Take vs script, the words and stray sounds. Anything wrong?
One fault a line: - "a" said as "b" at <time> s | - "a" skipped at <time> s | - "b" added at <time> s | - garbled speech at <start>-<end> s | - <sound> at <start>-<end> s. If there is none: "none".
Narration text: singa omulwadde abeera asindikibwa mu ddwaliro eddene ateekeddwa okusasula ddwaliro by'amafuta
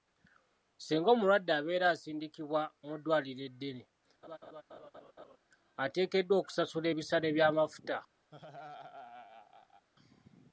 - laugh at 4.2-5.4 s
- "ddwaliro" said as "ebisale" at 6.9 s
- laugh at 8.3-9.9 s